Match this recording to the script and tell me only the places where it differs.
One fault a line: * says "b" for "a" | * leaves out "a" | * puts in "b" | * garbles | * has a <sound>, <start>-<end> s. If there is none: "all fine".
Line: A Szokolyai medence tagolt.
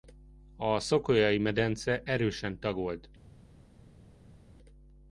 * puts in "erősen"